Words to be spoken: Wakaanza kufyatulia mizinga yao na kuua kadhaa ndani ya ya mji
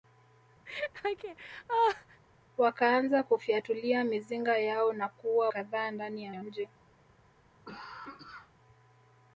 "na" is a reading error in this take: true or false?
false